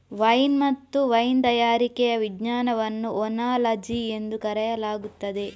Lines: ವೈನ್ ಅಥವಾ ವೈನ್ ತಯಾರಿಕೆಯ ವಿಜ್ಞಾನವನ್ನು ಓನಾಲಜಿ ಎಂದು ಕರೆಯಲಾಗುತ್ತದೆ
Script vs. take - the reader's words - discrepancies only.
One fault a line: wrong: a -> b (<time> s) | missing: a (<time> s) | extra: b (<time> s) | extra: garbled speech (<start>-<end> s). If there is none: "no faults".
wrong: ಅಥವಾ -> ಮತ್ತು (0.6 s)